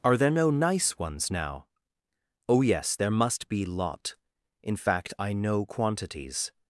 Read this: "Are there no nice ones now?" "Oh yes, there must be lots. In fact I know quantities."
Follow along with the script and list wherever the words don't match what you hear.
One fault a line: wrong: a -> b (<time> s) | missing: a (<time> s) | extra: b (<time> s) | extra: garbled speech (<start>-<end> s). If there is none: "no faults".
wrong: lots -> lot (3.7 s)